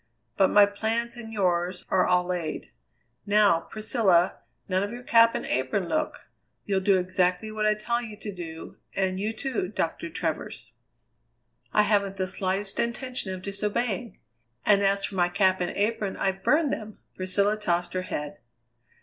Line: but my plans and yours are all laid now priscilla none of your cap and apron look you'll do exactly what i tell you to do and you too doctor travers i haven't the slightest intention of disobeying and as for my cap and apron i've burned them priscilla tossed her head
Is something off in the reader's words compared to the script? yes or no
no